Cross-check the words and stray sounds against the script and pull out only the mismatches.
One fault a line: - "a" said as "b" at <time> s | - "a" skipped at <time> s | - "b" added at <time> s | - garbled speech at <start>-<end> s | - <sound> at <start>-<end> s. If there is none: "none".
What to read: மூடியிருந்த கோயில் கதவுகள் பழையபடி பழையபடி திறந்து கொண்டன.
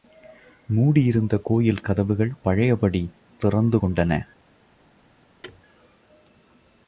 - "பழையபடி" skipped at 3.1 s
- thud at 5.4-5.6 s